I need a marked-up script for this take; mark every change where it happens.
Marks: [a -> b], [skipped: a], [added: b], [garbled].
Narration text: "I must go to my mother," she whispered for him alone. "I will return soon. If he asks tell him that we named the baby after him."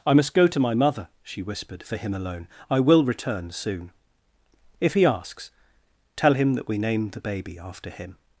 "I must go to my mother," she whispered for him alone. "I will return soon. If he asks tell him that we named the baby after him."